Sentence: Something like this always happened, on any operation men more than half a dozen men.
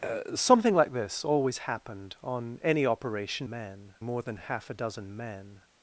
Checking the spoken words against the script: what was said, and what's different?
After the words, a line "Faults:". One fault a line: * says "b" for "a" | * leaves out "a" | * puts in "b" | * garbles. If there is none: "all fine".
Something like this always happened, on any operation men more than half a dozen men.
Faults:
all fine